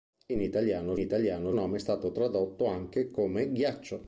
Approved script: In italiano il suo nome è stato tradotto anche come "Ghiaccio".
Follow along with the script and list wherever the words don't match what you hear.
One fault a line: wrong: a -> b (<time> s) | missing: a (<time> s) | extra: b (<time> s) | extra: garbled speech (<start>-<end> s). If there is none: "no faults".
wrong: suo -> italiano (1.0 s)